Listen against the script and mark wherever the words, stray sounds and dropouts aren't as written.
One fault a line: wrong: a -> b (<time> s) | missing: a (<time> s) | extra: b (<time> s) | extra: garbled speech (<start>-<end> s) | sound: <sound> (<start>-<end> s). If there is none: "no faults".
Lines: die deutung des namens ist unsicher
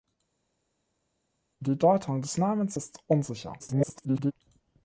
extra: garbled speech (3.6-4.3 s)